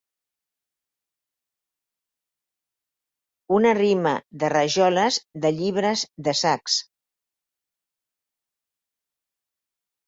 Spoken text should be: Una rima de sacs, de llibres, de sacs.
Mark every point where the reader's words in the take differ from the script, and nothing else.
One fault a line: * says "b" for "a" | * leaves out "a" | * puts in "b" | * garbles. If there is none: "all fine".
* says "rajoles" for "sacs"